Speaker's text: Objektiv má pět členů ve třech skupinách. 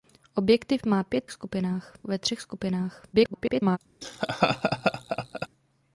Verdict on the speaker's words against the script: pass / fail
fail